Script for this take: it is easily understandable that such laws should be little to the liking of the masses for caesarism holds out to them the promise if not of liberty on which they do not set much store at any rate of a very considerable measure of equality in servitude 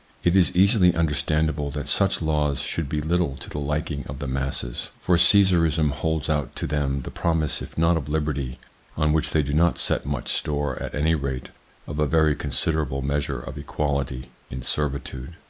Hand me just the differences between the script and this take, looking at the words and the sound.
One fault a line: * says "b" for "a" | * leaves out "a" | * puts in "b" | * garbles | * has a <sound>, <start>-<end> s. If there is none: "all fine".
all fine